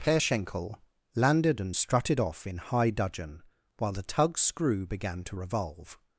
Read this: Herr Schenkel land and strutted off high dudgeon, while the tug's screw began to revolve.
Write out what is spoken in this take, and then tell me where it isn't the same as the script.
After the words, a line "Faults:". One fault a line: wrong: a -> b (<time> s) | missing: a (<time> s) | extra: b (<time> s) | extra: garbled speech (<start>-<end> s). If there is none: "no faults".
Herr Schenkel landed and strutted off in high dudgeon, while the tug's screw began to revolve.
Faults:
wrong: land -> landed (1.1 s)
extra: in (2.5 s)